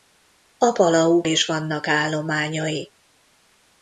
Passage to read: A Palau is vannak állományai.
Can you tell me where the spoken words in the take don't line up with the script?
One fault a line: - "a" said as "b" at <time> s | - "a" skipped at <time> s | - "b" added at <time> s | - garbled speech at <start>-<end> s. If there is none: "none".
none